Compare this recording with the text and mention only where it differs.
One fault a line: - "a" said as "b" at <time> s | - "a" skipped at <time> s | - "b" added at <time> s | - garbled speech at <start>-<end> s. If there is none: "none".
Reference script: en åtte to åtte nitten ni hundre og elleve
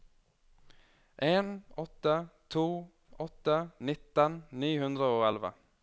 none